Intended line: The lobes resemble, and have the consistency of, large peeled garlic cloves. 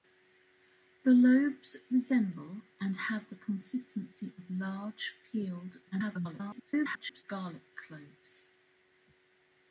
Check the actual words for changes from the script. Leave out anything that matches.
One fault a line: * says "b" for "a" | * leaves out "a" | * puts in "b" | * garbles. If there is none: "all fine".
* garbles